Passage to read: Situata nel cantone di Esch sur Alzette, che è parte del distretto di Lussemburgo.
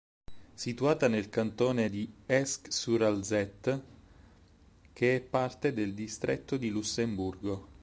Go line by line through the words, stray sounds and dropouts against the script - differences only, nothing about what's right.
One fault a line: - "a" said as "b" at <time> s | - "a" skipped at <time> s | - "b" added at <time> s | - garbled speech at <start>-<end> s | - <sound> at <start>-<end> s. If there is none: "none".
none